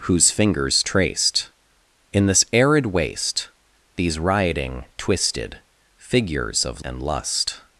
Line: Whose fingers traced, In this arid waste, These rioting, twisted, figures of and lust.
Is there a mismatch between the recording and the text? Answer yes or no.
no